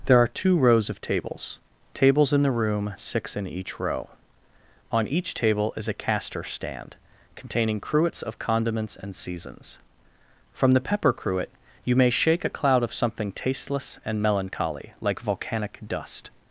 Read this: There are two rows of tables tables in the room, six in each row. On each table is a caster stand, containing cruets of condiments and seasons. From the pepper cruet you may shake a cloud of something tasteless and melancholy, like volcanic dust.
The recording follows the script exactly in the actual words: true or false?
true